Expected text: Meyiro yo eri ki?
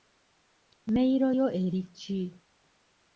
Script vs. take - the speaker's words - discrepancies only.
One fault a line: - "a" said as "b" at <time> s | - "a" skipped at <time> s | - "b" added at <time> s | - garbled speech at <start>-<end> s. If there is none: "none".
none